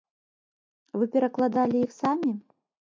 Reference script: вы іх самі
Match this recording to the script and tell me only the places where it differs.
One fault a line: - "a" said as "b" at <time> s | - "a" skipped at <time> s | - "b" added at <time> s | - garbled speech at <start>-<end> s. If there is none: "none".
- "перакладалі" added at 1.2 s